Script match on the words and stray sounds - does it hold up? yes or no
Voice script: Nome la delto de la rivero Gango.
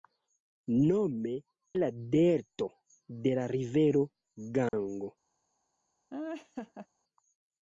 no